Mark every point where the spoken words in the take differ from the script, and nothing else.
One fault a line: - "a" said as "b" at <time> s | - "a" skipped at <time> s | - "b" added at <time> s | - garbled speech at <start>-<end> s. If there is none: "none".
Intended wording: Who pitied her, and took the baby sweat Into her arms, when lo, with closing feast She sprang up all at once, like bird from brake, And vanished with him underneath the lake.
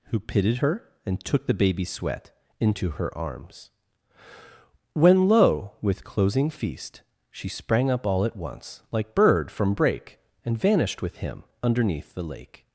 none